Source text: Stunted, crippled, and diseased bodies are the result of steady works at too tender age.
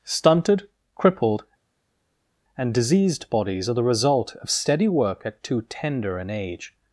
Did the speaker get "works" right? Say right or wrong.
wrong